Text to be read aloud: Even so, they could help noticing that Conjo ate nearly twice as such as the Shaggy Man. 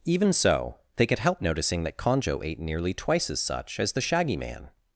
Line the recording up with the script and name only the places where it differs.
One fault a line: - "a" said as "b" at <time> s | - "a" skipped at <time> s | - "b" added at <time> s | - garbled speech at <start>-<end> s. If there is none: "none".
none